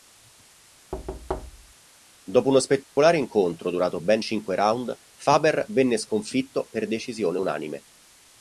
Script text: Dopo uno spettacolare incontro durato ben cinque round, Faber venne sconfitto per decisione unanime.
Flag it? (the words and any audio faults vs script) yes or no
yes